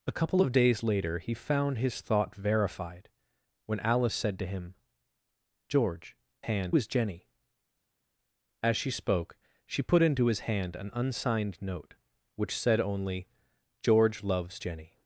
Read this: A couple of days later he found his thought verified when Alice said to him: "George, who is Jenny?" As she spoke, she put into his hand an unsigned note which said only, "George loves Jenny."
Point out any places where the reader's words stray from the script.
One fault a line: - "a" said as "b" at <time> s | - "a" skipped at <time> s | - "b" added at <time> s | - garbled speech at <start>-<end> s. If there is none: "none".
- "who" said as "hand" at 6.4 s